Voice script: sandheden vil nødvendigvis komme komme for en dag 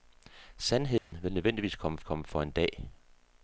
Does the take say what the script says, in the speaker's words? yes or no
yes